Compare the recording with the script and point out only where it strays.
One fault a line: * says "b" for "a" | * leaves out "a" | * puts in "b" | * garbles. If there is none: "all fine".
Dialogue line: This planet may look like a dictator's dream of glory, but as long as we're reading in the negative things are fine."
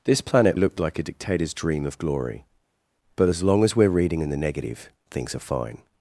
* leaves out "may"